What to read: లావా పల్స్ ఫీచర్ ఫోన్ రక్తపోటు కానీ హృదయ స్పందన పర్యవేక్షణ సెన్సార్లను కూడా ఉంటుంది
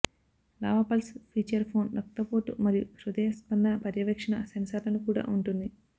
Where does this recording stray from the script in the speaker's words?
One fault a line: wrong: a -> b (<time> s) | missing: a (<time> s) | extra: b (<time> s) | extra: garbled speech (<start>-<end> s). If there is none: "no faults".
wrong: కానీ -> మరియు (2.6 s)